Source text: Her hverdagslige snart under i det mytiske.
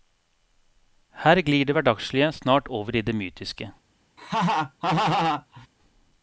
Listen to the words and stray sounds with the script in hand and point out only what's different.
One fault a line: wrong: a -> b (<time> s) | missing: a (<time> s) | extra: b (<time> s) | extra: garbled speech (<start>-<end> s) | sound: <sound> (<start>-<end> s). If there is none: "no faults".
extra: glir det (1.4 s)
wrong: under -> over (2.7 s)
sound: laugh (4.2-5.7 s)